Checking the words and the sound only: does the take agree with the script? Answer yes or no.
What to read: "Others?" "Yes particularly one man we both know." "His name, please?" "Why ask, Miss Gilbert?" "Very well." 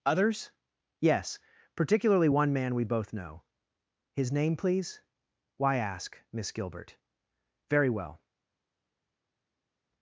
yes